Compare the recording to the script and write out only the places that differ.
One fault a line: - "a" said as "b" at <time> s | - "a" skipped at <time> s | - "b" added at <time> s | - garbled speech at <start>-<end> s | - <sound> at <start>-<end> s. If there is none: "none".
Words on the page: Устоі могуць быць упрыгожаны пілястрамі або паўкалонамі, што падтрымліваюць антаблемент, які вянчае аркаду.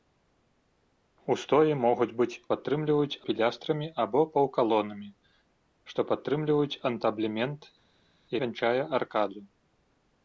- "упрыгожаны" said as "падтрымліваюць" at 2.5 s
- "які" skipped at 7.6 s